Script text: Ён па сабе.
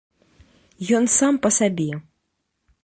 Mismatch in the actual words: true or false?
true